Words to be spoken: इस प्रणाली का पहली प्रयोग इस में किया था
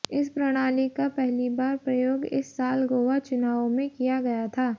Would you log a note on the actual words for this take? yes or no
yes